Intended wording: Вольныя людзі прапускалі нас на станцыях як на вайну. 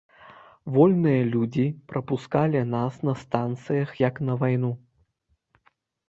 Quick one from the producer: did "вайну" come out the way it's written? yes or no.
yes